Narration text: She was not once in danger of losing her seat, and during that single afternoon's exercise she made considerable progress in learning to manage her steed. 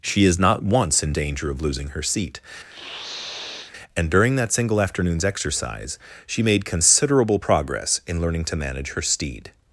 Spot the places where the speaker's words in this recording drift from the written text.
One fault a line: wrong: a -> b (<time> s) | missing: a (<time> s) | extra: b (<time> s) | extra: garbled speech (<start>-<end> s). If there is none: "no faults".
wrong: was -> is (0.2 s)